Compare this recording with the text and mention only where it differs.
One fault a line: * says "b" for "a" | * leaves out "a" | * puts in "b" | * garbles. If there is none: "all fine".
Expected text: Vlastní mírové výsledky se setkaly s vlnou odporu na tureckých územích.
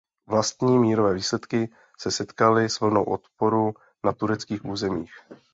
all fine